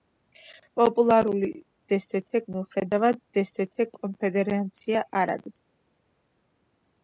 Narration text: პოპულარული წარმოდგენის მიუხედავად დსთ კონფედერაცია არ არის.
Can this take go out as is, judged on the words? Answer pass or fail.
fail